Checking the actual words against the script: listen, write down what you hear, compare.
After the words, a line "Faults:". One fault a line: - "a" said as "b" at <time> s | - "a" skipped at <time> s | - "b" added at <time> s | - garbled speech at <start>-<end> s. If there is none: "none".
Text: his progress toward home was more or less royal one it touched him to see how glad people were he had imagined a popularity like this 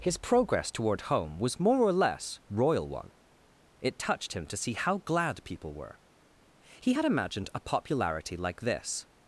his progress toward home was more or less royal one it touched him to see how glad people were he had imagined a popularity like this
Faults:
none